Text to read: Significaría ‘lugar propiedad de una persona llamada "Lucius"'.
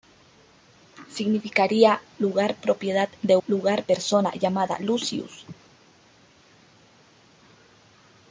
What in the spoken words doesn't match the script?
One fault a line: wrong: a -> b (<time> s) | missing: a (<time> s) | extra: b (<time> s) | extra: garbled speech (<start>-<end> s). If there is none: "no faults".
wrong: una -> lugar (3.5 s)